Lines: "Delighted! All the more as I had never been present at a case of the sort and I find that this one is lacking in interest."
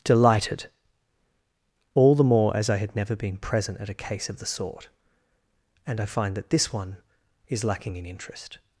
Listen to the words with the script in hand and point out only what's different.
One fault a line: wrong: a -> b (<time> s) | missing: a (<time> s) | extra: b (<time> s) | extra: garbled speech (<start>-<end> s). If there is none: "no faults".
no faults